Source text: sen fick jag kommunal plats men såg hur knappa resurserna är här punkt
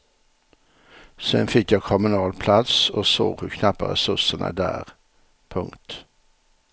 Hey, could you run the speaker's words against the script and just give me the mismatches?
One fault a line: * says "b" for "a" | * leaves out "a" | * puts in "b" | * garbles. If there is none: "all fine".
* says "och" for "men"
* says "där" for "här"